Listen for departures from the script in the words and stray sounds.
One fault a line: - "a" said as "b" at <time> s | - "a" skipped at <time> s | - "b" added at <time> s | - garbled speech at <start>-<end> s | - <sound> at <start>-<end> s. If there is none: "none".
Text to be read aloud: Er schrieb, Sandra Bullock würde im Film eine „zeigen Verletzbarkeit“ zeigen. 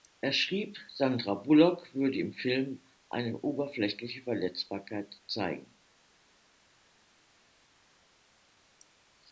- "zeigen" said as "oberflächliche" at 3.4 s